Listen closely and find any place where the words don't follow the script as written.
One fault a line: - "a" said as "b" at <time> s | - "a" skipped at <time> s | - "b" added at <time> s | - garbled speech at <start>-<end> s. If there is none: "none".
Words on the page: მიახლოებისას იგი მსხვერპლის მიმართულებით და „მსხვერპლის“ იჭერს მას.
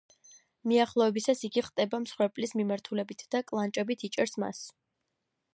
- "ხტება" added at 1.7 s
- "მსხვერპლის" said as "კლანჭებით" at 3.5 s